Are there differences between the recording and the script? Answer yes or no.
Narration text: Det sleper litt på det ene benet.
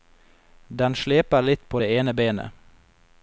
yes